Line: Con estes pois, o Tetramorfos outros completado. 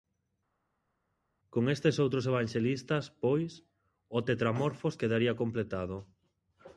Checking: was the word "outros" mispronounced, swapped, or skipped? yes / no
yes